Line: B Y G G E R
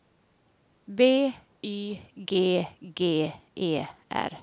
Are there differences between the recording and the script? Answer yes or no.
no